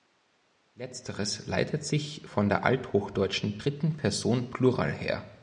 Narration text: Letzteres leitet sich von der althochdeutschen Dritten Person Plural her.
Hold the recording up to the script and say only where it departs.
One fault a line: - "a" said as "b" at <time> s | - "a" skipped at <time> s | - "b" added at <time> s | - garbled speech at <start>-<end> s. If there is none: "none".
none